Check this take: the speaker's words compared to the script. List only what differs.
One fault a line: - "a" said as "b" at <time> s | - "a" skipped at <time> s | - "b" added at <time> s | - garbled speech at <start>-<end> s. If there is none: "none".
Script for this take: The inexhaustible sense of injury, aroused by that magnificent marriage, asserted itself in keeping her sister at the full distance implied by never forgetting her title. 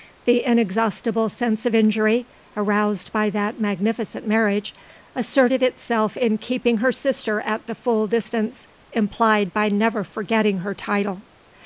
none